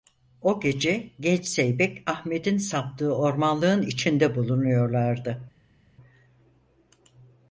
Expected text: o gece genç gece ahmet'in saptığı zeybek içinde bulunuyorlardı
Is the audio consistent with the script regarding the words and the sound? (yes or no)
no